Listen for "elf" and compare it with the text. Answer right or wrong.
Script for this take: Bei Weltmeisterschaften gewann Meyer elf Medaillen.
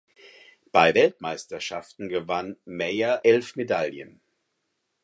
right